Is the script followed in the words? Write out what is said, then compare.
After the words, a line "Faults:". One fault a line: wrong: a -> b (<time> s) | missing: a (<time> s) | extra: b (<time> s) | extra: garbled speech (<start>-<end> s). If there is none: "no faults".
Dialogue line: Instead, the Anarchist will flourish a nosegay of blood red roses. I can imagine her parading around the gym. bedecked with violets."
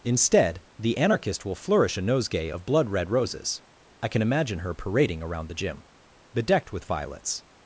Instead, the Anarchist will flourish a nosegay of blood red roses. I can imagine her parading around the gym. bedecked with violets."
Faults:
no faults